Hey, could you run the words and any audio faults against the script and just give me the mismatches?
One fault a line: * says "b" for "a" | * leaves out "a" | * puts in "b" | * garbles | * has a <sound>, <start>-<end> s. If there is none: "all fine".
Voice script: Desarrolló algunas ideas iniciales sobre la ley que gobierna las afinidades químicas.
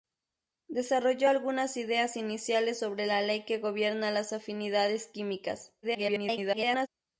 * garbles